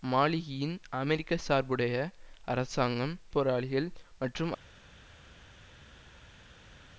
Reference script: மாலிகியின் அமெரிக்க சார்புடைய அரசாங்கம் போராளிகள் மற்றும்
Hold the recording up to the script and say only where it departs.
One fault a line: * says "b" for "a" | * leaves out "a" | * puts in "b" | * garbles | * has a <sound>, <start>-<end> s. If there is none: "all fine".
all fine